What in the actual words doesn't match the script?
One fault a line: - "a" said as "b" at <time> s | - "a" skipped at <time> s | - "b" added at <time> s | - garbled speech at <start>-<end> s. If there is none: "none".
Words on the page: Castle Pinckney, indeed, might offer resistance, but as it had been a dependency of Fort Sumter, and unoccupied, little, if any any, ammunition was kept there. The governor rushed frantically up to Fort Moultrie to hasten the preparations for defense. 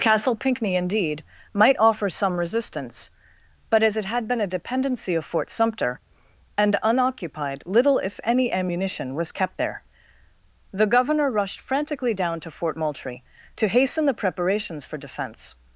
- "some" added at 2.1 s
- "any" skipped at 8.5 s
- "up" said as "down" at 12.1 s